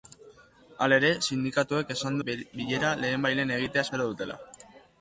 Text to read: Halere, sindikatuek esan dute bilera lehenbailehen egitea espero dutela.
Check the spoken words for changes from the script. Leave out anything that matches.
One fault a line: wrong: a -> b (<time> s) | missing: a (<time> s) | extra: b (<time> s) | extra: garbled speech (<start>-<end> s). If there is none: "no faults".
missing: dute (2.2 s)